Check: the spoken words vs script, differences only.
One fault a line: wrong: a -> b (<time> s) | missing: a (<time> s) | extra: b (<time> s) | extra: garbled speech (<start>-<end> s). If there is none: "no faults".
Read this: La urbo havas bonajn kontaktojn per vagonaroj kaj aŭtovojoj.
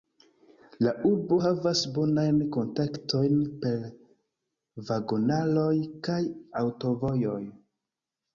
no faults